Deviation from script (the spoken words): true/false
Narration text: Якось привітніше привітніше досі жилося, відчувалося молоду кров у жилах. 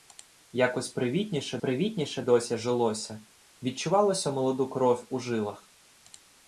false